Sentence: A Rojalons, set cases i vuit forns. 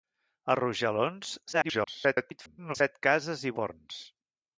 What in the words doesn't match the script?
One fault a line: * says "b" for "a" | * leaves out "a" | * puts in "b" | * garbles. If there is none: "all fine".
* garbles
* leaves out "vuit"